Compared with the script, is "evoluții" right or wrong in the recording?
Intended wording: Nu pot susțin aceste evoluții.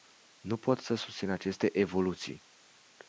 right